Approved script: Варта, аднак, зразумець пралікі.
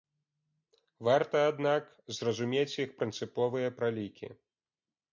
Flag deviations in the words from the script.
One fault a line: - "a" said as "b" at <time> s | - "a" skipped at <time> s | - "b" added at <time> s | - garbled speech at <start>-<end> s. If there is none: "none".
- "іх прынцыповыя" added at 2.9 s